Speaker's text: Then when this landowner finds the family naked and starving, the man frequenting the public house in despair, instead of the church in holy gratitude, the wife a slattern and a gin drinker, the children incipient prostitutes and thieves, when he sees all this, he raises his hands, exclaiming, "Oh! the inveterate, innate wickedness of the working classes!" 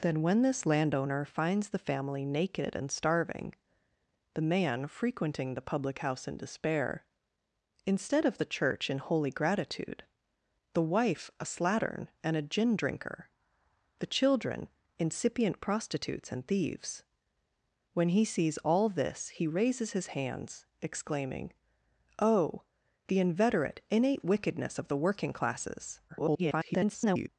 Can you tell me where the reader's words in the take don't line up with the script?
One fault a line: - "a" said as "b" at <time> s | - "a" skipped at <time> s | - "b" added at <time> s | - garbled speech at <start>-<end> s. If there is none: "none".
- garbled speech at 26.1-27.3 s